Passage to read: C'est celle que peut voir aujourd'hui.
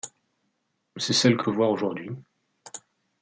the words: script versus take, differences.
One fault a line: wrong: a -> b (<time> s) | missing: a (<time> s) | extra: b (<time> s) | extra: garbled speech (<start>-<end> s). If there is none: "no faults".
no faults